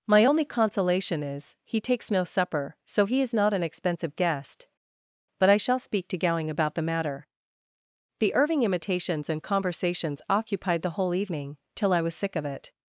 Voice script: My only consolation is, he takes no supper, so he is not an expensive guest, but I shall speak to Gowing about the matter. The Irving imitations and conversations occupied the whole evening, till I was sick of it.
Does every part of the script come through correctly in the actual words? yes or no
yes